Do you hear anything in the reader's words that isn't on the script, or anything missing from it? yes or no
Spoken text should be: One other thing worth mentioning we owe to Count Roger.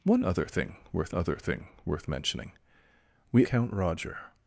yes